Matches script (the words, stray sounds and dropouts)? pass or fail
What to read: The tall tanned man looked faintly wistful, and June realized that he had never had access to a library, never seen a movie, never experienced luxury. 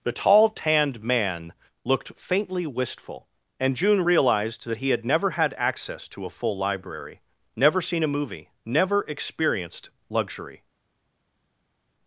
fail